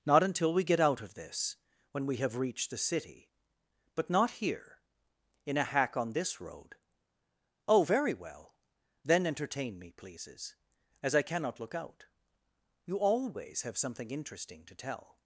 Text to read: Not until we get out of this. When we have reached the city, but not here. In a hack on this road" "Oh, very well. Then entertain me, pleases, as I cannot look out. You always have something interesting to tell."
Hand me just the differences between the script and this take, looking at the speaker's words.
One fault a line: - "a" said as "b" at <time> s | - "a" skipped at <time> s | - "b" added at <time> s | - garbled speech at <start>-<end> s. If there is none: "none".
none